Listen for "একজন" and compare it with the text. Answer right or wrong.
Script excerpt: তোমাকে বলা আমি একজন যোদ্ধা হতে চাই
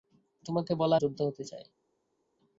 wrong